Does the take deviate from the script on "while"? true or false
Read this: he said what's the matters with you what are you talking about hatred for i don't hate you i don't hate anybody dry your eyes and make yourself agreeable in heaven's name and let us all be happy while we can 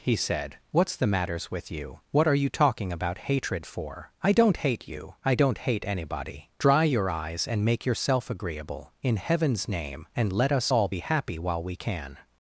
false